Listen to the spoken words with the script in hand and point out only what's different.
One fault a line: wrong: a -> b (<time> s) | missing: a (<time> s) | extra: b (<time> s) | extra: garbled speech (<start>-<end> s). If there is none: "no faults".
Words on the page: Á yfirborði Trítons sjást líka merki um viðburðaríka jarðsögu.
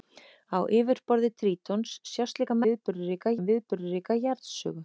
wrong: merki -> viðburðaríka (2.7 s)